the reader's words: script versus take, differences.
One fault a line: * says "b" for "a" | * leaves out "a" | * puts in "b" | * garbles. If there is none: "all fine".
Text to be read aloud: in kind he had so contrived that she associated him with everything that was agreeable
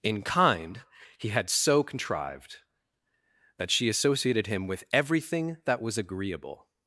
all fine